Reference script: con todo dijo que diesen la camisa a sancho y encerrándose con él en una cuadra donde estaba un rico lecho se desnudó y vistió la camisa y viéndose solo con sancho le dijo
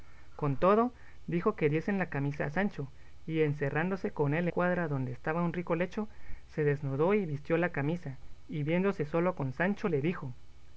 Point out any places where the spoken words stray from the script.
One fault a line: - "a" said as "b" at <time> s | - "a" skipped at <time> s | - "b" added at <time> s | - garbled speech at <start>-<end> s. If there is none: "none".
- "en una" skipped at 4.5 s